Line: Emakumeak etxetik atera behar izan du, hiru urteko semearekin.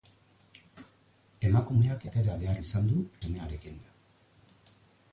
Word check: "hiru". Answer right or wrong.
wrong